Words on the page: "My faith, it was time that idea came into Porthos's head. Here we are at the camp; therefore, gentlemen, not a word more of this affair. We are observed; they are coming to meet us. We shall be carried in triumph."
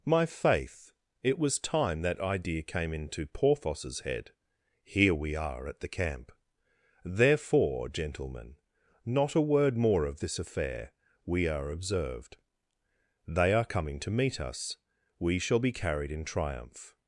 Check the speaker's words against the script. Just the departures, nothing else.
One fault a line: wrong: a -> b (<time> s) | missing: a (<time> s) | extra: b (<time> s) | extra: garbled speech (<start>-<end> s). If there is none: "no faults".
no faults